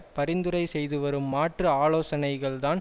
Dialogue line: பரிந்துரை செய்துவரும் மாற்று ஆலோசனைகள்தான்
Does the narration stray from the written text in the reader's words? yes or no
no